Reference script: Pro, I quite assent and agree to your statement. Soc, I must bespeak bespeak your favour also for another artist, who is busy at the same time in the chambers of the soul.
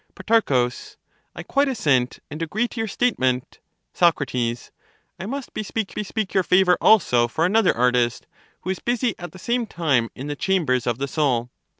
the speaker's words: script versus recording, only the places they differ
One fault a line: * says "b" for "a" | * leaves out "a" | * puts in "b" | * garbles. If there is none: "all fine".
all fine